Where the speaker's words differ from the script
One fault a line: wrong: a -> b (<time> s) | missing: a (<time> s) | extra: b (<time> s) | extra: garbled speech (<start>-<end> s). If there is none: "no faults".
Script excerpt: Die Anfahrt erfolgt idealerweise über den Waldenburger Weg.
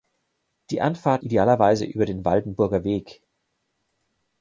missing: erfolgt (1.2 s)